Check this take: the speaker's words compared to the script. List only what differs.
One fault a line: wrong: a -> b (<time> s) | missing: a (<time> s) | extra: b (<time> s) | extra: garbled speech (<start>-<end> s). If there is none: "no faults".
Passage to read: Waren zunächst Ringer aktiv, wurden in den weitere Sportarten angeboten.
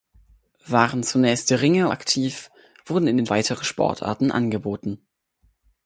no faults